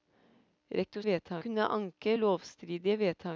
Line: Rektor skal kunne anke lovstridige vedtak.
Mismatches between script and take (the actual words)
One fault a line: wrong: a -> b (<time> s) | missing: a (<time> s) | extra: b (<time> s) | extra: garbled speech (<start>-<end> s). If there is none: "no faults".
wrong: skal -> vedtak (1.0 s)